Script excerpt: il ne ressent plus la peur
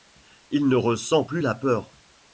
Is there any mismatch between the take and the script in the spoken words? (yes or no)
no